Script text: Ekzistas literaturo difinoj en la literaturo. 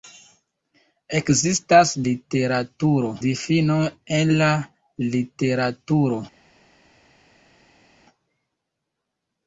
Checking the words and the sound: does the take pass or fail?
pass